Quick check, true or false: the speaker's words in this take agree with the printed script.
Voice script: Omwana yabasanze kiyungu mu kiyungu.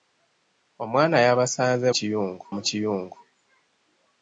true